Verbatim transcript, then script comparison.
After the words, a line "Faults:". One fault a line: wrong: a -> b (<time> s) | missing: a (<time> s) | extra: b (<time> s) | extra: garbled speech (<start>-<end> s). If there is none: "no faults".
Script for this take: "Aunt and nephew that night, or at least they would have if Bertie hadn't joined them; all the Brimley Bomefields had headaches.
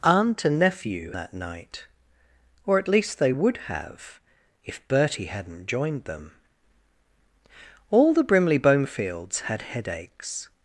"Aunt and nephew that night, or at least they would have if Bertie hadn't joined them; all the Brimley Bomefields had headaches.
Faults:
no faults